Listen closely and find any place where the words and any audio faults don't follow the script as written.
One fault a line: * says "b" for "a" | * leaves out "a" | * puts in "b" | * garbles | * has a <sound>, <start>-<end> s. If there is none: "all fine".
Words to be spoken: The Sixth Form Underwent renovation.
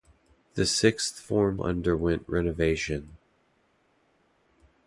all fine